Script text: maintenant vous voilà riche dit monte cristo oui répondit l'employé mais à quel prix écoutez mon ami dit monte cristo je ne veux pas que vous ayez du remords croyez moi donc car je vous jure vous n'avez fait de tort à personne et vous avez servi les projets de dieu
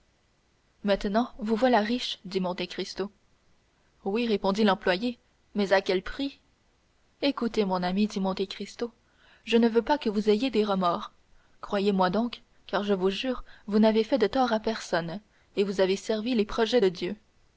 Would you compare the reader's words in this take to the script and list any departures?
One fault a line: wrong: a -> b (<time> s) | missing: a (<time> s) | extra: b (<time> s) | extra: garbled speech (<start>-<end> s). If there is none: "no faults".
wrong: du -> des (10.5 s)